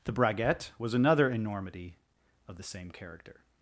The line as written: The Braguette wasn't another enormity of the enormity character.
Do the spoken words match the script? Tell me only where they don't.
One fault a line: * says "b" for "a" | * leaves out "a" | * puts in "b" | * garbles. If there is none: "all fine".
* says "was" for "wasn't"
* says "same" for "enormity"